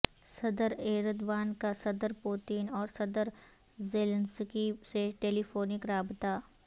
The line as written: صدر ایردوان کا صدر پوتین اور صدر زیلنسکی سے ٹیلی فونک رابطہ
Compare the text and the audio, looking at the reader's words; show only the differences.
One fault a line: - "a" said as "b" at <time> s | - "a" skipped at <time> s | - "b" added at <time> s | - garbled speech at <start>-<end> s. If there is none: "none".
none